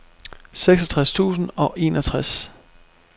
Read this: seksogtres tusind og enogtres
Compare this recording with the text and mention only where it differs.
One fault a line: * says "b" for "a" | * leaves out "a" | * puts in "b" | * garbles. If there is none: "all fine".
all fine